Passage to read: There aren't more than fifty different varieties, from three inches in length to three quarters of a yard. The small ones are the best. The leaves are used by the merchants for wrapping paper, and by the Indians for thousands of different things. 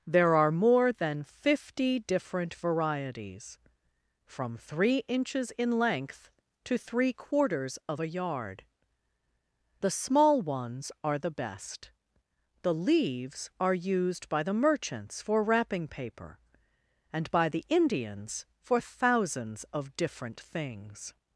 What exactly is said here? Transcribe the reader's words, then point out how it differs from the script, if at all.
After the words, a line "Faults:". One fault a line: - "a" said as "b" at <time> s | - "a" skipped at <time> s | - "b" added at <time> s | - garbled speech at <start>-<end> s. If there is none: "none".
There are more than fifty different varieties, from three inches in length to three quarters of a yard. The small ones are the best. The leaves are used by the merchants for wrapping paper, and by the Indians for thousands of different things.
Faults:
- "aren't" said as "are" at 0.3 s